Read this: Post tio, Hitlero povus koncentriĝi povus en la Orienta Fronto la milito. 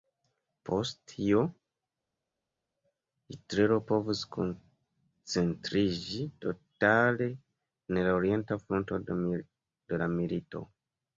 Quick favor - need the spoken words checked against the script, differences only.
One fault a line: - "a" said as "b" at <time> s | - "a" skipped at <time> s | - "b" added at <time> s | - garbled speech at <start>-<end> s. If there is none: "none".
- "povus" said as "totale" at 6.5 s
- "de" added at 9.1 s